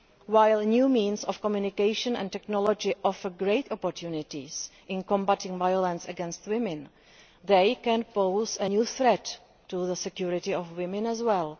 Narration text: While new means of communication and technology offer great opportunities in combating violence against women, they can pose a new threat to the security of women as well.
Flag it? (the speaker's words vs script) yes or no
no